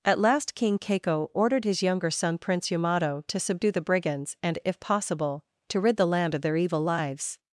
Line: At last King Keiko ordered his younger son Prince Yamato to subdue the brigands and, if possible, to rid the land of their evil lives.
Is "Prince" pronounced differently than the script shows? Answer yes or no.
no